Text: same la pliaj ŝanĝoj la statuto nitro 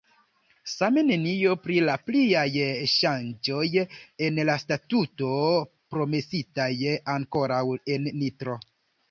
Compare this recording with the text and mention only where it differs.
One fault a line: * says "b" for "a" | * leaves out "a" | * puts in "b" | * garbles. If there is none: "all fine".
* puts in "nenio pri"
* puts in "en"
* puts in "promesitaj ankoraŭ en"